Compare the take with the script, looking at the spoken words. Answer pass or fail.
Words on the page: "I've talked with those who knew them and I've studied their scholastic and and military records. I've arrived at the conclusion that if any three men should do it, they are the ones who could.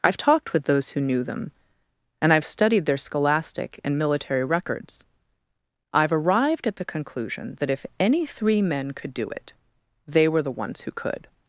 fail